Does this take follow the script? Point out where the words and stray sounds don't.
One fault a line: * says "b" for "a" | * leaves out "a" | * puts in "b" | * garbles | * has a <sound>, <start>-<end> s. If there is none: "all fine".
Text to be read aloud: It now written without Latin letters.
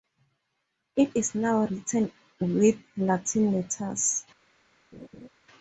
* puts in "is"
* says "with" for "without"
* has a laugh, 4.9-5.3 s